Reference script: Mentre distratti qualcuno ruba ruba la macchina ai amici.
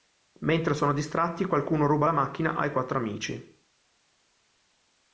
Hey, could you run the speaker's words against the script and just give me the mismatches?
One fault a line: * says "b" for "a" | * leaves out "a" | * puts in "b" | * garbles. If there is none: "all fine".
* puts in "sono"
* leaves out "ruba"
* puts in "quattro"